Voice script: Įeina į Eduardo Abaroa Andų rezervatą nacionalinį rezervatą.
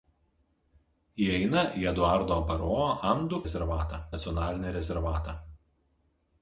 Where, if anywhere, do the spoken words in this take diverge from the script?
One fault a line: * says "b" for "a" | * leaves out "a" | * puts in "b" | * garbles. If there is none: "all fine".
all fine